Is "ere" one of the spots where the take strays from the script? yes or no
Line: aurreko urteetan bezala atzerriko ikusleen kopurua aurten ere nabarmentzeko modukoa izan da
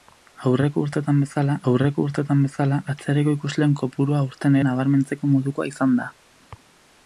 yes